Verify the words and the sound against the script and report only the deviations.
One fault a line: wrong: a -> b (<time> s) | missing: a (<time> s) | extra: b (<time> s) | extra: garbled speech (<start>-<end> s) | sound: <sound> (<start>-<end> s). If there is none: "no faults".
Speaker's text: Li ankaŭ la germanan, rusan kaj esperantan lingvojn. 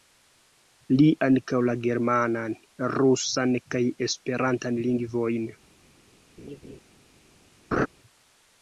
sound: laugh (6.4-6.8 s)
sound: laugh (7.7-7.9 s)